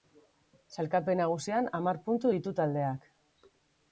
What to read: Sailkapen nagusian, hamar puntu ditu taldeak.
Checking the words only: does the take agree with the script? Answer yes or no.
yes